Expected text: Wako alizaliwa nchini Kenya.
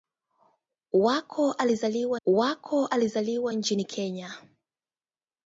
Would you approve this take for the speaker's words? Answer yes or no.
no